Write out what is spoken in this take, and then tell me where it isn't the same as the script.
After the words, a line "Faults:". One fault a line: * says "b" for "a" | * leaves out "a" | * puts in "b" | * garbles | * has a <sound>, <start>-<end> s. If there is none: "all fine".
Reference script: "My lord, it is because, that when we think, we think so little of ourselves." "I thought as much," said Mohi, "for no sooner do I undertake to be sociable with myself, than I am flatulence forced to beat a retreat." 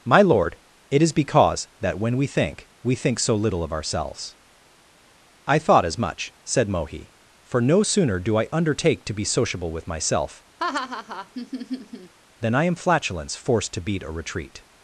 "My lord, it is because, that when we think, we think so little of ourselves." "I thought as much," said Mohi, "for no sooner do I undertake to be sociable with myself, than I am flatulence forced to beat a retreat."
Faults:
* has a laugh, 10.6-12.1 s